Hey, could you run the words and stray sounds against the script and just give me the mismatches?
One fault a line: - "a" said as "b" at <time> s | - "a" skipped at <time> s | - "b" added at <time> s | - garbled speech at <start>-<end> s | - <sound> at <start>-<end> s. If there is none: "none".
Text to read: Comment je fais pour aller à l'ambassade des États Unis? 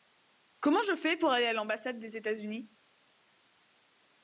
none